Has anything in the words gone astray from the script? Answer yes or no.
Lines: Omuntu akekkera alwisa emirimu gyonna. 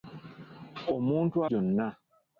yes